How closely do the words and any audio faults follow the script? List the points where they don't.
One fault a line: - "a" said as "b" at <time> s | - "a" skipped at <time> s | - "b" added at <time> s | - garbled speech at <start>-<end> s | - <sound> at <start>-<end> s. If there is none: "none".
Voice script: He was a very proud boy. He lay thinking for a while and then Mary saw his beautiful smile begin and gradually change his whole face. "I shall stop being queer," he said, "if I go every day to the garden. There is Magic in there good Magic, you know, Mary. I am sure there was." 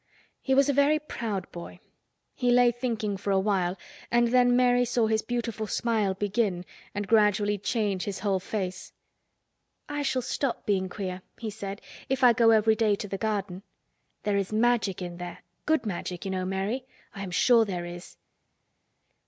- "was" said as "is" at 17.8 s